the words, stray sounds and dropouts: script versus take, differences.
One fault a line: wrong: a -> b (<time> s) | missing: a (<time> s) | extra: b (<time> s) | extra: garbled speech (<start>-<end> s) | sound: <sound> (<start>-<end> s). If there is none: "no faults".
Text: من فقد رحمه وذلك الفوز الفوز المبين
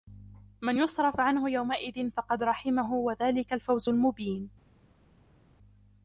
extra: يصرف عنه يومئذ (0.8 s)
missing: الفوز (3.9 s)